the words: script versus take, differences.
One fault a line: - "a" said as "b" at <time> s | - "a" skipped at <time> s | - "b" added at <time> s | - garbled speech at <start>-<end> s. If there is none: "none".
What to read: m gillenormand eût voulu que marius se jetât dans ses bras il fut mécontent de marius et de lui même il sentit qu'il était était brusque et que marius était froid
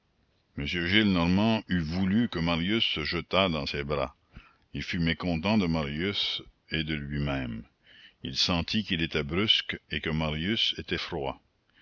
- "était" skipped at 9.2 s